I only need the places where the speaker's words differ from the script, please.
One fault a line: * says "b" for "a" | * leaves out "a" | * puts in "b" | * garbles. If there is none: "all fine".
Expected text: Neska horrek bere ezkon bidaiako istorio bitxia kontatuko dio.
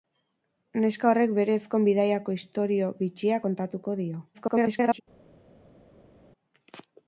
* garbles